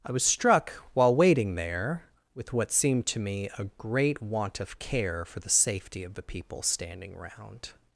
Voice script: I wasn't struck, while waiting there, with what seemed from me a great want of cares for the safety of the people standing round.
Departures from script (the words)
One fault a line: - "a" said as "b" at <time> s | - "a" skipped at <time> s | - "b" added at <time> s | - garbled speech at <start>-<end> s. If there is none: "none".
- "wasn't" said as "was" at 0.1 s
- "from" said as "to" at 3.1 s
- "cares" said as "care" at 4.8 s